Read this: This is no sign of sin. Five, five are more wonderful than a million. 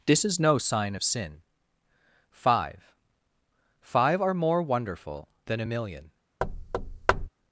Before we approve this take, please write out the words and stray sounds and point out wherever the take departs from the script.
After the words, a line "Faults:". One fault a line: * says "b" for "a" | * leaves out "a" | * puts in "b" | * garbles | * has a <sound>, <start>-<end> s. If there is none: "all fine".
This is no sign of sin. Five, five are more wonderful than a million.
Faults:
* has a thud, 6.4-7.3 s